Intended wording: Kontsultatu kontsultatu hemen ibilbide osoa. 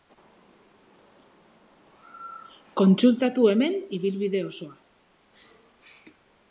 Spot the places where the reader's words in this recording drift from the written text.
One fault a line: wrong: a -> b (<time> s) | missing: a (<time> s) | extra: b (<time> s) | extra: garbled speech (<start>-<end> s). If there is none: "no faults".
missing: kontsultatu (3.5 s)